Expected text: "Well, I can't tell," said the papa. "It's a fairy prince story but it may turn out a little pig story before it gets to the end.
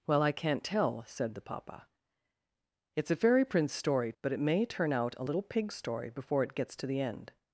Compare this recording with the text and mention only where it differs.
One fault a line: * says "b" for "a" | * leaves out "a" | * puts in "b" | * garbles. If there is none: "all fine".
all fine